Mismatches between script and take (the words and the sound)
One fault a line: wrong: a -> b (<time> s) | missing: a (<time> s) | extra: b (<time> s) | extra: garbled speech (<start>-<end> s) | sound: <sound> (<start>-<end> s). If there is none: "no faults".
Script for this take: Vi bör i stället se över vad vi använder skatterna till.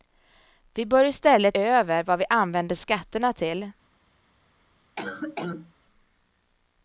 missing: se (1.6 s)
sound: cough (5.0-5.7 s)